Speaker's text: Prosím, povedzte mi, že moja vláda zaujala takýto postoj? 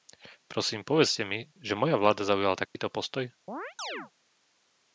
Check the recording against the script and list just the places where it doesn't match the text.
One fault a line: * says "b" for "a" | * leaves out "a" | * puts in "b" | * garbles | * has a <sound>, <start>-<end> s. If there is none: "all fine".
* has a dropout, 2.7-2.7 s
* has a chirp, 3.5-4.1 s